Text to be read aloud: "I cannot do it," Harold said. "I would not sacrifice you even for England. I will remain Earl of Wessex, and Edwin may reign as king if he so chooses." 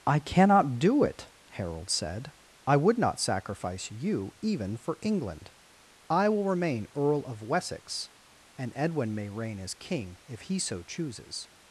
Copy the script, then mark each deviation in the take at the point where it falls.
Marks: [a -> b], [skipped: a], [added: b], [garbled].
"I cannot do it," Harold said. "I would not sacrifice you even for England. I will remain Earl of Wessex, and Edwin may reign as king if he so chooses."